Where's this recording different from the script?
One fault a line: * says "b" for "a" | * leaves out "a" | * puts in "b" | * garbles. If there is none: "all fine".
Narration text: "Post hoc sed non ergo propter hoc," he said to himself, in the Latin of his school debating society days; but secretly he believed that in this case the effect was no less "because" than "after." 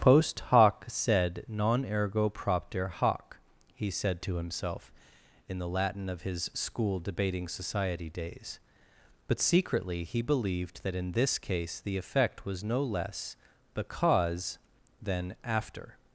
all fine